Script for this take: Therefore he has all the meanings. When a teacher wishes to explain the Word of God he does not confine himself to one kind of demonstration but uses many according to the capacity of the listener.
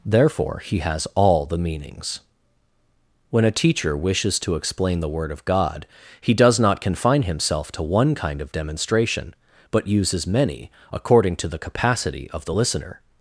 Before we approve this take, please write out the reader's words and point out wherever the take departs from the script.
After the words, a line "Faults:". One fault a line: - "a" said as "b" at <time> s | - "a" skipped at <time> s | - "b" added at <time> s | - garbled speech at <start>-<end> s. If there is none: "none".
Therefore he has all the meanings. When a teacher wishes to explain the Word of God he does not confine himself to one kind of demonstration but uses many according to the capacity of the listener.
Faults:
none